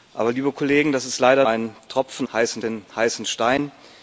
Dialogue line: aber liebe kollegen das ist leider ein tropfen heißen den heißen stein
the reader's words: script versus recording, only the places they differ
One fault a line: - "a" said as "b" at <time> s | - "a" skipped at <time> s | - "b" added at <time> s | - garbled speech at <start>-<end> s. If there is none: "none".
none